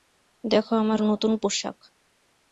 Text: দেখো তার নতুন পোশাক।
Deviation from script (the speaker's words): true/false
true